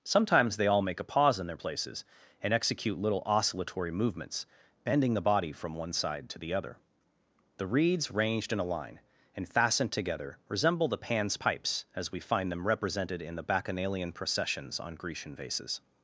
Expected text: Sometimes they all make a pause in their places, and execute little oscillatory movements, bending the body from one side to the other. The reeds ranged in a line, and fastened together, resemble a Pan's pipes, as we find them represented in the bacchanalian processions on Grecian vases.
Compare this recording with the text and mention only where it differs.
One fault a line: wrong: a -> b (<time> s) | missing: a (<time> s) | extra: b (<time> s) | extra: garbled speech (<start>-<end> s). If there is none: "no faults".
wrong: a -> the (10.9 s)